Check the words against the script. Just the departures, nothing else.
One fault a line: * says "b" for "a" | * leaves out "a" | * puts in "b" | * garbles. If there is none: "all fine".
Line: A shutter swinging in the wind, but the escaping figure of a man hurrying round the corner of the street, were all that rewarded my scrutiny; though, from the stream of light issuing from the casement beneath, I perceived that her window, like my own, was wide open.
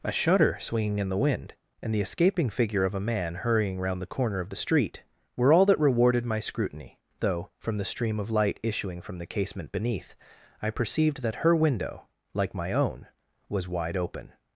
* says "and" for "but"